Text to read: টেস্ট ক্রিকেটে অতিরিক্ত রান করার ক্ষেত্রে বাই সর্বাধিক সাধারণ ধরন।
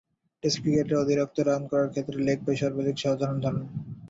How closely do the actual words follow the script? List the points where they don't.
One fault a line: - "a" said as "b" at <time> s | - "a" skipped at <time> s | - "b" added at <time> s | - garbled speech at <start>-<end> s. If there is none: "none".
- "লেগ" added at 2.3 s